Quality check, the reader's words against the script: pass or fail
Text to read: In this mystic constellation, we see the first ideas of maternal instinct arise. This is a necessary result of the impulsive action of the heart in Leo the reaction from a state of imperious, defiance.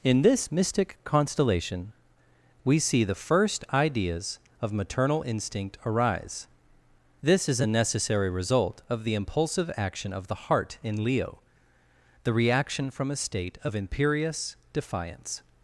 pass